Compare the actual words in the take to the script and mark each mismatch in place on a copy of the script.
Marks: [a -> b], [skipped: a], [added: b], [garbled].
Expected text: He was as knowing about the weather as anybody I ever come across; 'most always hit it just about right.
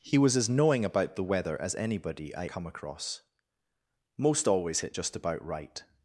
He was as knowing about the weather as anybody I [skipped: ever] come across; 'most always [skipped: hit] it just about right.